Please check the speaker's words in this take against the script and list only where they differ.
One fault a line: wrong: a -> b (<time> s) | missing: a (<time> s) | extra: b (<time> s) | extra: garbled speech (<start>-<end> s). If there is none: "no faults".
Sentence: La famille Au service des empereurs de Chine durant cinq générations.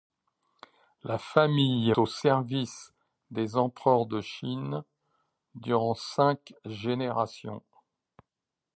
no faults